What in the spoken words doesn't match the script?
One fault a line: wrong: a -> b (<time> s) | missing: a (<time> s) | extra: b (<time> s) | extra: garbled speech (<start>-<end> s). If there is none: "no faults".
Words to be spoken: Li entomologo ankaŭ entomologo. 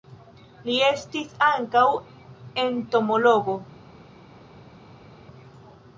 wrong: entomologo -> estis (0.9 s)